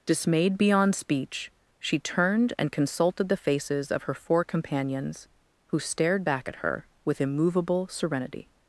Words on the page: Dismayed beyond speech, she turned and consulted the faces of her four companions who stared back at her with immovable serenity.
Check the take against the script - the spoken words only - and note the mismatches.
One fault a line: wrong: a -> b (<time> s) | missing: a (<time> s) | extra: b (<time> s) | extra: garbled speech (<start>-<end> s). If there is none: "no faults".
no faults